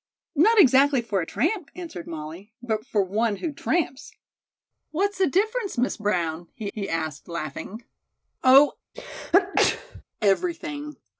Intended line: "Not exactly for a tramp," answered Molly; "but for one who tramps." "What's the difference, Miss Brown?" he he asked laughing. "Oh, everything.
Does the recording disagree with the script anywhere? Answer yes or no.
no